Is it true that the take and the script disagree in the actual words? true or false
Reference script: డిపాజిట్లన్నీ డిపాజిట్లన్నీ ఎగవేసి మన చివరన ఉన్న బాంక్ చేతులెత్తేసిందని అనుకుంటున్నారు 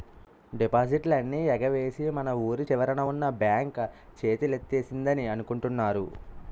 true